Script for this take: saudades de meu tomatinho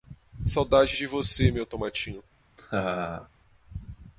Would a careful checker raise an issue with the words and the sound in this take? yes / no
yes